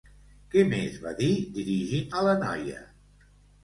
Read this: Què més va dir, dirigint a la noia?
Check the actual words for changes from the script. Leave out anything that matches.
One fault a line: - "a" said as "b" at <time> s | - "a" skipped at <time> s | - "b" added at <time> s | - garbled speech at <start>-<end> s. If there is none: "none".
none